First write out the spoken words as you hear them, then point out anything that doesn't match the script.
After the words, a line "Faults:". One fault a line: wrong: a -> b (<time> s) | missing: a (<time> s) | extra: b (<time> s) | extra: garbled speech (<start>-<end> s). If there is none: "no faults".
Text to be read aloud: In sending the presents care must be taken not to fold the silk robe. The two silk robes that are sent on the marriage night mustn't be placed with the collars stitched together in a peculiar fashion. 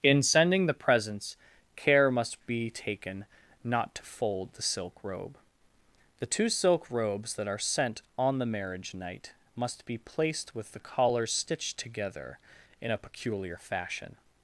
In sending the presents care must be taken not to fold the silk robe. The two silk robes that are sent on the marriage night must be placed with the collars stitched together in a peculiar fashion.
Faults:
wrong: mustn't -> must (9.6 s)